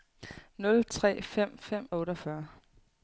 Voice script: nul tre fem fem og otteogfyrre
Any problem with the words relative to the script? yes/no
no